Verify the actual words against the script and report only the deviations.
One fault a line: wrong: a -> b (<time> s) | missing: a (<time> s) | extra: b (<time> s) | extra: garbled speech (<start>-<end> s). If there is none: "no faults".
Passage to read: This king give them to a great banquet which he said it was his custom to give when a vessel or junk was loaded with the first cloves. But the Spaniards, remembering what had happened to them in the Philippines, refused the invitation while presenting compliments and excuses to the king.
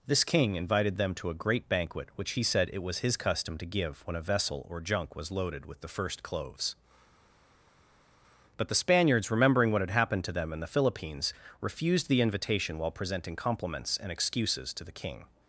wrong: give -> invited (0.6 s)